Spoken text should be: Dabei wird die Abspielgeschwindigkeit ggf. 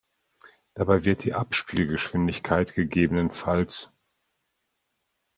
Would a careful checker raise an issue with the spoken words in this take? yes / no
no